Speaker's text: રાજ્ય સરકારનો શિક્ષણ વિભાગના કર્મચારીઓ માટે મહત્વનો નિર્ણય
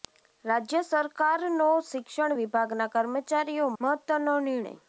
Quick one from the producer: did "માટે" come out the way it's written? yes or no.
no